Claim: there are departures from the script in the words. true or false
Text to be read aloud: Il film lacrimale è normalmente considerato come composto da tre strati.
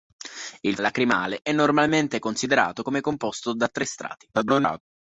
true